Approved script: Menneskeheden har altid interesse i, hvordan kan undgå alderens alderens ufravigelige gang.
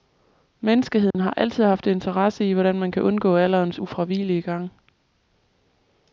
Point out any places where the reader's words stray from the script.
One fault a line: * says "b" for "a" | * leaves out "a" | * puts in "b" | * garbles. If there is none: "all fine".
* puts in "haft"
* puts in "man"
* leaves out "alderens"